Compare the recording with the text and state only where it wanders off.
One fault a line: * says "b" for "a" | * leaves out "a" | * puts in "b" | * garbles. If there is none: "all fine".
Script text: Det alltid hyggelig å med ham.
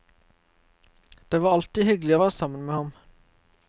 * puts in "var"
* puts in "være sammen"